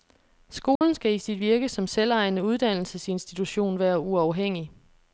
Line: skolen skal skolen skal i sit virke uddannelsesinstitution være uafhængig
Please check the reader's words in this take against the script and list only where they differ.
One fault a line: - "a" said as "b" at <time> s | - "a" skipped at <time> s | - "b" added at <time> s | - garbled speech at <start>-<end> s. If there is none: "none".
- "skolen skal" skipped at 1.1 s
- "som selvejende" added at 1.7 s